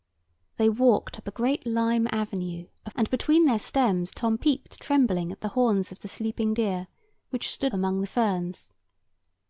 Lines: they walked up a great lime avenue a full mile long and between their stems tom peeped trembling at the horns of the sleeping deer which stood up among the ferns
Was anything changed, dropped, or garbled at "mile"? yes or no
yes